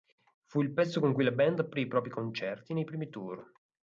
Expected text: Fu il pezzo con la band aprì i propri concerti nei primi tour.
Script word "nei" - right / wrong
right